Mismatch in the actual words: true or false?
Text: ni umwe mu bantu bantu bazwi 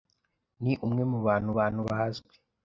false